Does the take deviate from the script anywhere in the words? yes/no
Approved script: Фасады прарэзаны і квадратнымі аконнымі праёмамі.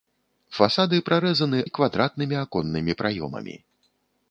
no